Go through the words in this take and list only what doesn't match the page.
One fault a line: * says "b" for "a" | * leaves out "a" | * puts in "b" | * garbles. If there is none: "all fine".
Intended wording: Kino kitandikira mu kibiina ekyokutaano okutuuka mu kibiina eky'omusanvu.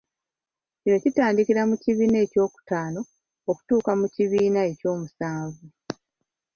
all fine